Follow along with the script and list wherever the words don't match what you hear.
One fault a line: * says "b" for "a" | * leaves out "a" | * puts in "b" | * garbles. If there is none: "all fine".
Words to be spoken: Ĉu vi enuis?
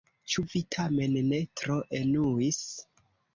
* puts in "tamen ne tro"